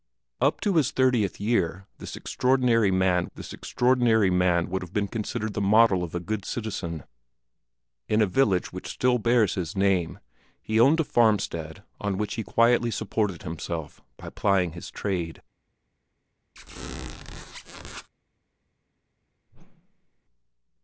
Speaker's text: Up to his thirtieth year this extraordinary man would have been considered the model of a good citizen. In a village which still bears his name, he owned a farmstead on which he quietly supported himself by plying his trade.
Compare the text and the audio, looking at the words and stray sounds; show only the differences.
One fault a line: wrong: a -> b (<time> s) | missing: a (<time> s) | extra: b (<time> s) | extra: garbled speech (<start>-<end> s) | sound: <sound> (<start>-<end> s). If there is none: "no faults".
extra: this extraordinary man (3.4 s)
sound: squeak (16.6-18.1 s)
sound: whoosh (19.5-20.2 s)